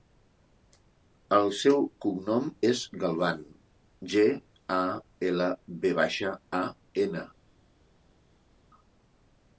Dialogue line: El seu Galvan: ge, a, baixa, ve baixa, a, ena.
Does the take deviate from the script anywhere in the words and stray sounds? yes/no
yes